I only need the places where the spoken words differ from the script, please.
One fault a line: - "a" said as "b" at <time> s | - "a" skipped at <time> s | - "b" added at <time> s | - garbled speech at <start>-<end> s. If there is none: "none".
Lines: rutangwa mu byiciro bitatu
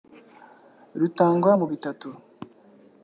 - "byiciro" skipped at 1.6 s